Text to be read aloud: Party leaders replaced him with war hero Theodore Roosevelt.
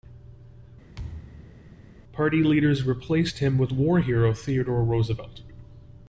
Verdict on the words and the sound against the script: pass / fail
fail